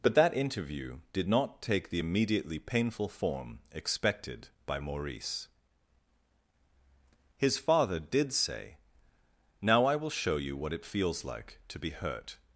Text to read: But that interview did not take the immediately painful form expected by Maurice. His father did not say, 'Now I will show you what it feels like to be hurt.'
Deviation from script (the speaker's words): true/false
true